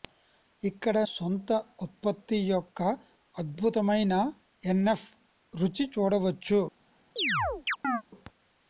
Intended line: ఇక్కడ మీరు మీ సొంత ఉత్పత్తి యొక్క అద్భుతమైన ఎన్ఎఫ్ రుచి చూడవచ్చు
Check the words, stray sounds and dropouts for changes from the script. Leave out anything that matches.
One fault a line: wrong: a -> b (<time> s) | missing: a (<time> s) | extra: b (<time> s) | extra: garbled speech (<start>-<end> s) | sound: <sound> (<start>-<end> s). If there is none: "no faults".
missing: మీరు మీ (1.0 s)
sound: chirp (7.2-8.0 s)